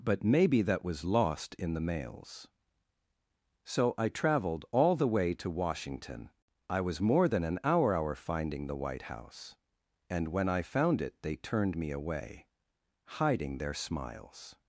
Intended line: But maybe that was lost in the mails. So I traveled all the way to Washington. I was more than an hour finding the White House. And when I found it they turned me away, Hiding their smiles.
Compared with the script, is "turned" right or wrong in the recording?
right